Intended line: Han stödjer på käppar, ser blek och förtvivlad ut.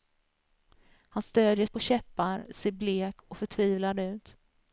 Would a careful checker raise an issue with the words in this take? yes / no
no